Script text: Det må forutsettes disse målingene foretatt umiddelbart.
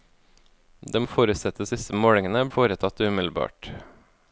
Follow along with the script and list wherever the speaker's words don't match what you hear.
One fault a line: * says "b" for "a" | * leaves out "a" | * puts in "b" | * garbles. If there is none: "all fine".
all fine